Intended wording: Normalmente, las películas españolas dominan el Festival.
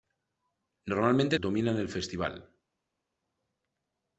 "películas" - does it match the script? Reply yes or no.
no